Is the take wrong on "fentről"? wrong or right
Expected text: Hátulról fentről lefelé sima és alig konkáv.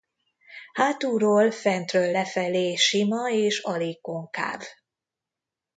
right